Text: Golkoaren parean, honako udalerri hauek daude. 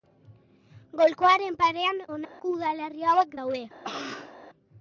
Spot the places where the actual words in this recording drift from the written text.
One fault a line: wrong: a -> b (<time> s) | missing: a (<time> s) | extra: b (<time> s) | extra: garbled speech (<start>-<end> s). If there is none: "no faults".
no faults